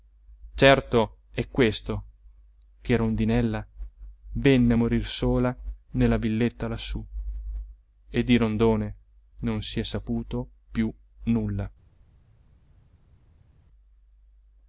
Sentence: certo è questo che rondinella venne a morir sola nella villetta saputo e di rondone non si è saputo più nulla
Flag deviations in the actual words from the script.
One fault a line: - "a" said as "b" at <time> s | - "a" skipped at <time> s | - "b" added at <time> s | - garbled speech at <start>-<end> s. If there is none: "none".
- "saputo" said as "lassù" at 6.7 s